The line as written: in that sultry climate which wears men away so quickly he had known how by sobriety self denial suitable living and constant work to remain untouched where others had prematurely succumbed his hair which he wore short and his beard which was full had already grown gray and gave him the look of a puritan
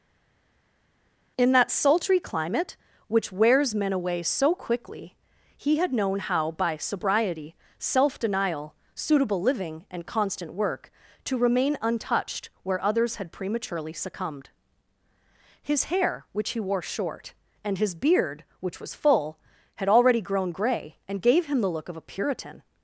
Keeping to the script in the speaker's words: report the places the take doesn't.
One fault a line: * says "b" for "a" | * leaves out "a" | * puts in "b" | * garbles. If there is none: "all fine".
all fine